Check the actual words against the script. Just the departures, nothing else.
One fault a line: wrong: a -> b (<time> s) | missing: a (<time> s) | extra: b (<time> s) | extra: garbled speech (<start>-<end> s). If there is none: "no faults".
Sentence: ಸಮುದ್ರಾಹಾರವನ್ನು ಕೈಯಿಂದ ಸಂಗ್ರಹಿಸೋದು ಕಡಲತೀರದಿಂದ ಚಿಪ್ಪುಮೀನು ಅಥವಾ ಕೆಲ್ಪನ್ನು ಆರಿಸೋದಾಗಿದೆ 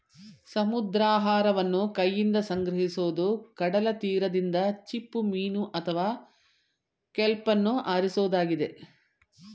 no faults